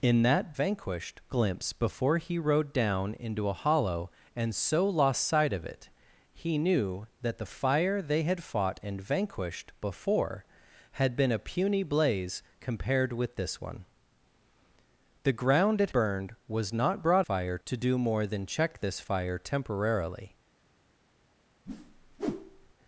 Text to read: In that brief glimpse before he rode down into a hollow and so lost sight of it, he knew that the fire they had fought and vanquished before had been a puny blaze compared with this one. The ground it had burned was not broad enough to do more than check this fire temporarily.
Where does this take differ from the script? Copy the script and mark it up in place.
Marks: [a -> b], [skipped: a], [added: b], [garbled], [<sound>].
In that [brief -> vanquished] glimpse before he rode down into a hollow and so lost sight of it, he knew that the fire they had fought and vanquished before had been a puny blaze compared with this one. The ground it [skipped: had] burned was not broad [enough -> fire] to do more than check this fire temporarily. [whoosh]